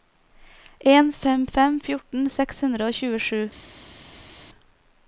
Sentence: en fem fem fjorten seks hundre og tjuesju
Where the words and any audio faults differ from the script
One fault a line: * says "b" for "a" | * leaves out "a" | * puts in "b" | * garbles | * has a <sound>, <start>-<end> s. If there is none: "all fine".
all fine